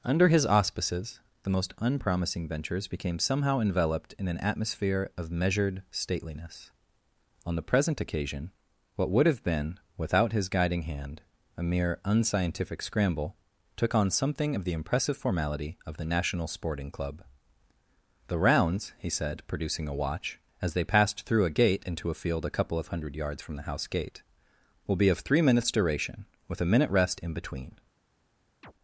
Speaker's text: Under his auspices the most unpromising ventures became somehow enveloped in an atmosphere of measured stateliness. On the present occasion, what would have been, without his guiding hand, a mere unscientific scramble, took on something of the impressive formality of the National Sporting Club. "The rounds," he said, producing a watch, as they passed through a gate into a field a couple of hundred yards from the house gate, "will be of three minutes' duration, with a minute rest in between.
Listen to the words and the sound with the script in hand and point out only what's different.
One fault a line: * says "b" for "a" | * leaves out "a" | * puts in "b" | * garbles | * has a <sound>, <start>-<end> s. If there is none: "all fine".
* has a chirp, 28.6-28.7 s